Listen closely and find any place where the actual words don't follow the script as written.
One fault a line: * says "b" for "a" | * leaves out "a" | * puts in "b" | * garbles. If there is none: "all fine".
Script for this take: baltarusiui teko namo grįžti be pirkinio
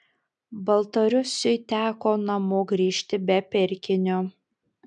all fine